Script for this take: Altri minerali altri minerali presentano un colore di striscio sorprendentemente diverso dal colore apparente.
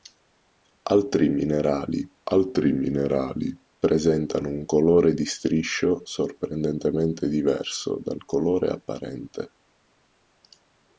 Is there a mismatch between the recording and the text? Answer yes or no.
no